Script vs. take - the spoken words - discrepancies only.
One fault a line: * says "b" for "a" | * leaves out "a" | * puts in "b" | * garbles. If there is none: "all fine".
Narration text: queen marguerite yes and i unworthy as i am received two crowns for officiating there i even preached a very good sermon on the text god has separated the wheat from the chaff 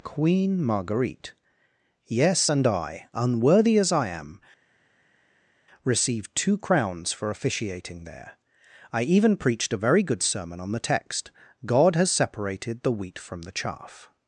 all fine